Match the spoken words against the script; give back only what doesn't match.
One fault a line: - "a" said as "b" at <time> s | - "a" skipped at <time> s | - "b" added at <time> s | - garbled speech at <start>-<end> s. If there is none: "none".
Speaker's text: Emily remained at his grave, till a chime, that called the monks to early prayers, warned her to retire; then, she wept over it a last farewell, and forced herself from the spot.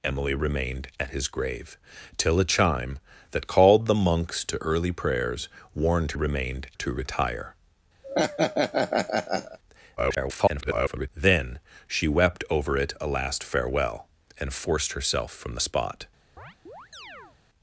- "her" said as "remained" at 6.1 s
- garbled speech at 10.0-11.1 s